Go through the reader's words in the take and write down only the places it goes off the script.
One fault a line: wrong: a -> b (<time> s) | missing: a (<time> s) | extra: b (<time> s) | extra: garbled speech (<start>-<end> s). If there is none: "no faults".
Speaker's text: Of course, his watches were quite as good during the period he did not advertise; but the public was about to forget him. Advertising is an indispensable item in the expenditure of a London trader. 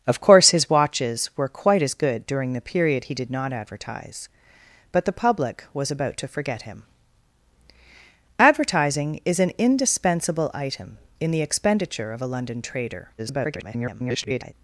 extra: garbled speech (13.2-14.5 s)